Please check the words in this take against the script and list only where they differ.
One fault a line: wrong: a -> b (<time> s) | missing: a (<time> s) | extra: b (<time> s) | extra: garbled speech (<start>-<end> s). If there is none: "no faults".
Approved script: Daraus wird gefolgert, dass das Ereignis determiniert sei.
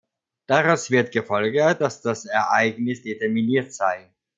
no faults